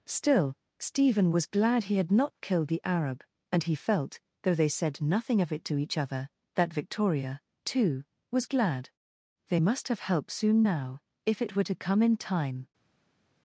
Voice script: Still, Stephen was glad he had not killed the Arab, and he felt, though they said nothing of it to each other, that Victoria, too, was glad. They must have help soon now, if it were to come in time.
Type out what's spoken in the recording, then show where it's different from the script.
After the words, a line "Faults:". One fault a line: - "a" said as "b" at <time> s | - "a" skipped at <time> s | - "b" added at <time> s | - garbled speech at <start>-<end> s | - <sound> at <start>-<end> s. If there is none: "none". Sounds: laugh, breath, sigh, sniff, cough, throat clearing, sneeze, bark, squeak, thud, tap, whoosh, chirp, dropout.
Still, Stephen was glad he had not killed the Arab, and he felt, though they said nothing of it to each other, that Victoria, too, was glad. They must have help soon now, if it were to come in time.
Faults:
none